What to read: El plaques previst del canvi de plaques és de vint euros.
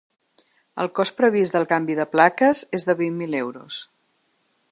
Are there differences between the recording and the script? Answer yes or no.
yes